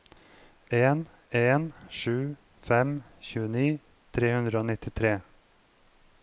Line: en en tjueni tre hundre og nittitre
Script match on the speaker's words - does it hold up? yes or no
no